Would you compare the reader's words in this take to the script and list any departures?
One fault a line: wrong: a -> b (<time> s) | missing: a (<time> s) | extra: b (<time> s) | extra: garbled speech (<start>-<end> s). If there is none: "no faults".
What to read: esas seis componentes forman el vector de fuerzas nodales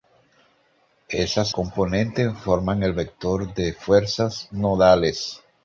missing: seis (1.5 s)